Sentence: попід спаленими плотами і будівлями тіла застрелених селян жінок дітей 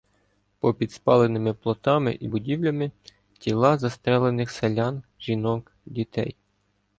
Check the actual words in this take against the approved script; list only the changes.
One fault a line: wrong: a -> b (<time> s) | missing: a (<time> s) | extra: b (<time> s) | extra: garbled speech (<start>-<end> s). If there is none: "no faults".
no faults